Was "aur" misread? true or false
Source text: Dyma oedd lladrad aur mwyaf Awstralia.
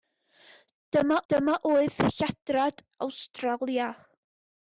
true